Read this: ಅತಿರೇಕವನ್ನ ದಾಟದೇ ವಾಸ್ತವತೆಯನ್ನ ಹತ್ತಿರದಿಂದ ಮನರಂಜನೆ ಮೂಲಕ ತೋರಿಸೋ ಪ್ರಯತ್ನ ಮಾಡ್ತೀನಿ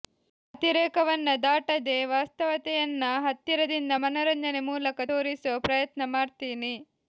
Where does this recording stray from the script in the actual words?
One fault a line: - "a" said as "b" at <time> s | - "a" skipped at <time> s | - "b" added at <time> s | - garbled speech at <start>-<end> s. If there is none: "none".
none